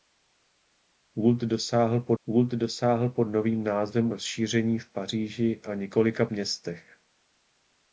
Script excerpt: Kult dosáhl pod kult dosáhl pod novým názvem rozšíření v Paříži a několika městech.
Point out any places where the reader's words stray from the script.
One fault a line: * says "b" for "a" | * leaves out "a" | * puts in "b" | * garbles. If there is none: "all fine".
all fine